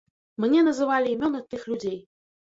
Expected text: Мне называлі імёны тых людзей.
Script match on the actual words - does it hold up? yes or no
yes